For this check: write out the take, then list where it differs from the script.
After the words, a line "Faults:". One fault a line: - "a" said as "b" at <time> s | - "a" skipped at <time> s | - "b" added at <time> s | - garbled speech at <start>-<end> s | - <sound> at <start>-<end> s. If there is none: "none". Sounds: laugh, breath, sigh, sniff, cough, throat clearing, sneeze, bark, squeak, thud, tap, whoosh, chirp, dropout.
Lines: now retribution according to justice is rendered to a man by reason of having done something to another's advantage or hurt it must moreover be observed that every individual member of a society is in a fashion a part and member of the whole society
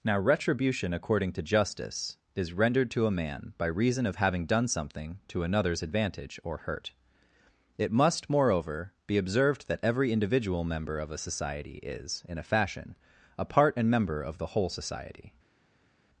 now retribution according to justice is rendered to a man by reason of having done something to another's advantage or hurt it must moreover be observed that every individual member of a society is in a fashion a part and member of the whole society
Faults:
none